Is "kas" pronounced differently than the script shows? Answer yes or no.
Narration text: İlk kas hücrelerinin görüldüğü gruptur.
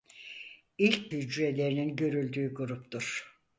yes